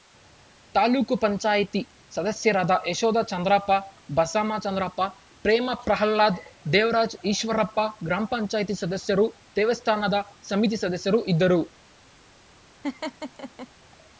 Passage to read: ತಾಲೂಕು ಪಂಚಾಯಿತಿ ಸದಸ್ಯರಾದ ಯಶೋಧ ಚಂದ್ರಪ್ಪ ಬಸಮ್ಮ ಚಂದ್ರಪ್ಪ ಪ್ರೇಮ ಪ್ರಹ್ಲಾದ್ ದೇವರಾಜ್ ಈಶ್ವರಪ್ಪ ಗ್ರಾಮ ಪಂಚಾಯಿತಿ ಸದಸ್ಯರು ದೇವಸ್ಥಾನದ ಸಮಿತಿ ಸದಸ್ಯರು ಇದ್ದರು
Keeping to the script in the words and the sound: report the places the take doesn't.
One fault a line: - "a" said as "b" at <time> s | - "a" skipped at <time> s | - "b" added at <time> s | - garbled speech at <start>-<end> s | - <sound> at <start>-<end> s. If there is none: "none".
- laugh at 12.8-13.7 s